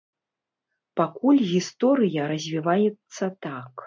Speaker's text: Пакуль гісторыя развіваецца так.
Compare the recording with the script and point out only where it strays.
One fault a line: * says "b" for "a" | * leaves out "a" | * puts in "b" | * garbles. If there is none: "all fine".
all fine